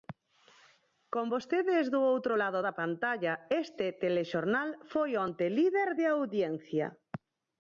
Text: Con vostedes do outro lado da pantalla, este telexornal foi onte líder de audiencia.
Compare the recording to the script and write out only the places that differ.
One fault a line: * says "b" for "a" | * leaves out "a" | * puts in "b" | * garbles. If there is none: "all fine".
all fine